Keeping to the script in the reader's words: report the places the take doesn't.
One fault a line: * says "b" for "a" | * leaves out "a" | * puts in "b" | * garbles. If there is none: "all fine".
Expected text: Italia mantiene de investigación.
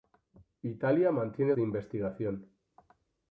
all fine